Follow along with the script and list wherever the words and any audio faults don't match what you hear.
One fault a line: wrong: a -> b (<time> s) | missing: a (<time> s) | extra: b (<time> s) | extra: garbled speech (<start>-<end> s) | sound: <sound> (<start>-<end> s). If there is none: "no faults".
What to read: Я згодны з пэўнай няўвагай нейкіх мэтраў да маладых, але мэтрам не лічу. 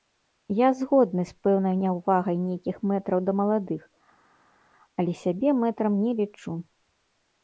extra: сябе (5.2 s)